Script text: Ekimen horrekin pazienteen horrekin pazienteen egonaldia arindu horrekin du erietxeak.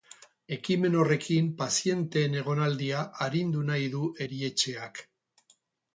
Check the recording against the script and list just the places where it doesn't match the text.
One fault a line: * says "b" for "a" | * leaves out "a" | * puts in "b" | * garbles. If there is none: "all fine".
* leaves out "horrekin pazienteen"
* says "nahi" for "horrekin"